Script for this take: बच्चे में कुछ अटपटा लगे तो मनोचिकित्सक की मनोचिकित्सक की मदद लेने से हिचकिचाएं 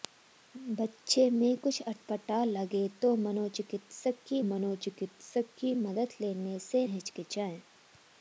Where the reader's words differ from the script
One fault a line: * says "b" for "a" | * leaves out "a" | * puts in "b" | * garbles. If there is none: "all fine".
all fine